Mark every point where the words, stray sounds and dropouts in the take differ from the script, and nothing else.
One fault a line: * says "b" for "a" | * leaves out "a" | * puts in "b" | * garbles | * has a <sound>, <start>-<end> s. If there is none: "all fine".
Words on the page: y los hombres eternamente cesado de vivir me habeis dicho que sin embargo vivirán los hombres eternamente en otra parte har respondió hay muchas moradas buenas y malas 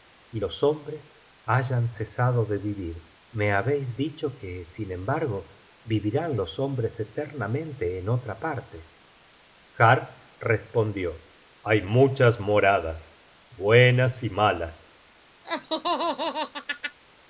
* says "hayan" for "eternamente"
* has a laugh, 15.4-17.0 s